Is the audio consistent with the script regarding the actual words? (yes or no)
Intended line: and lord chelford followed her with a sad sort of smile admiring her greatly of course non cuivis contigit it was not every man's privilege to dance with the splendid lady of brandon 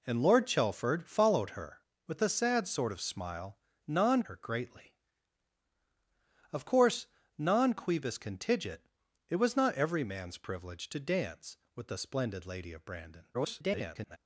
no